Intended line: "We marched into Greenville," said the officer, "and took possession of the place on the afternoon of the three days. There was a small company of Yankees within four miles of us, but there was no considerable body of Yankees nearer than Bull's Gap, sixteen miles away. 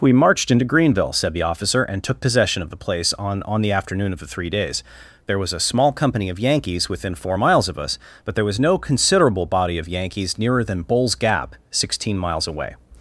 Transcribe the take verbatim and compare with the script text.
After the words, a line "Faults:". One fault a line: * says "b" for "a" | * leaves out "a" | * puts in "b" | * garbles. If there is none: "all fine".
"We marched into Greenville," said the officer, "and took possession of the place on on the afternoon of the three days. There was a small company of Yankees within four miles of us, but there was no considerable body of Yankees nearer than Bull's Gap, sixteen miles away.
Faults:
* puts in "on"